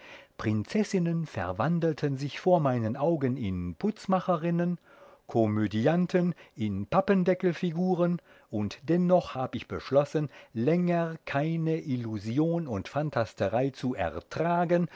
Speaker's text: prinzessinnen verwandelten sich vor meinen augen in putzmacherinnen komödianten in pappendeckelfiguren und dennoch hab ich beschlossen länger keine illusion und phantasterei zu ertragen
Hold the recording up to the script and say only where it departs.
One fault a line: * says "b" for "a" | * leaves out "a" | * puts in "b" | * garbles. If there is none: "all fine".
all fine